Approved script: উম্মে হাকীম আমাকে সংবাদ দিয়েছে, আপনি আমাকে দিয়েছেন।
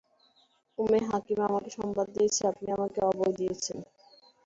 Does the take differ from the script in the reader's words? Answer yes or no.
yes